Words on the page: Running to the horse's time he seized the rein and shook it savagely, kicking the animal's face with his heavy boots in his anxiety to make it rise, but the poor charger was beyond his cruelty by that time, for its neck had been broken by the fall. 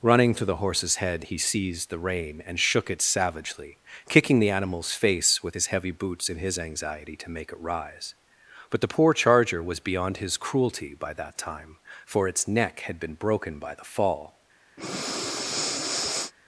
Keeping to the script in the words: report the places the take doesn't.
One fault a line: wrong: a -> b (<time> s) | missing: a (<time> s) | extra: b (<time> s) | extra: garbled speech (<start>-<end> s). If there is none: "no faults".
wrong: time -> head (0.9 s)